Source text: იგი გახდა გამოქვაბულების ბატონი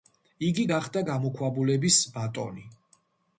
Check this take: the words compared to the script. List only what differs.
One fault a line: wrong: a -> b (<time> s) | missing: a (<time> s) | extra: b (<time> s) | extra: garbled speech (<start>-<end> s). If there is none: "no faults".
no faults